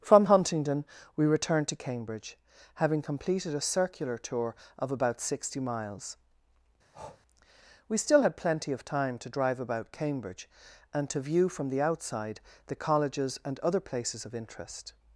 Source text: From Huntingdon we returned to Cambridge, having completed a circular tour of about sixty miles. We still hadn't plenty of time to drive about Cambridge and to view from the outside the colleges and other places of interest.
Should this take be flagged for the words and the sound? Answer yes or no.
yes